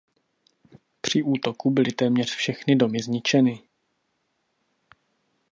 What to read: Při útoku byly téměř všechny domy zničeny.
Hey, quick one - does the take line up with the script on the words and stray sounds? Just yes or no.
yes